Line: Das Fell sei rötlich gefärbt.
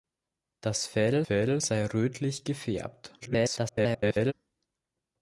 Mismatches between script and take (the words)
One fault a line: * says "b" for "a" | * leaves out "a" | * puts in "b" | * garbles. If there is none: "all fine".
* puts in "Fell"
* garbles